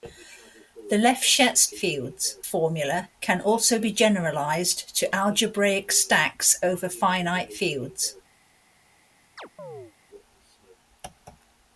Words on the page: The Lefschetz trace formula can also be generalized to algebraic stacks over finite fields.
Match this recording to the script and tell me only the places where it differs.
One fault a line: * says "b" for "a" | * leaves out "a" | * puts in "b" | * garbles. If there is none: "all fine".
* says "fields" for "trace"